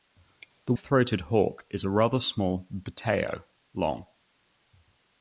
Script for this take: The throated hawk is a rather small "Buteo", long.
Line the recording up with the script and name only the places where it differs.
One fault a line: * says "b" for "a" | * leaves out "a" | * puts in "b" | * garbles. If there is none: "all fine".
all fine